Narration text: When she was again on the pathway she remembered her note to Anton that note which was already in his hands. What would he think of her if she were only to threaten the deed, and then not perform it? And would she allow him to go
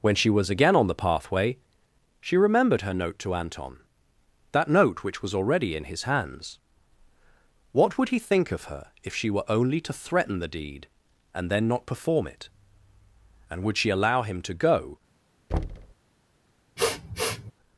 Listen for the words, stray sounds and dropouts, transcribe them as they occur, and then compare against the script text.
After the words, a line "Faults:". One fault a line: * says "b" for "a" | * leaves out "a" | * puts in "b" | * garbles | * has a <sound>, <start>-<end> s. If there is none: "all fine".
When she was again on the pathway she remembered her note to Anton that note which was already in his hands. What would he think of her if she were only to threaten the deed, and then not perform it? And would she allow him to go
Faults:
* has a thud, 15.5-16.0 s
* has a sniff, 16.8-17.5 s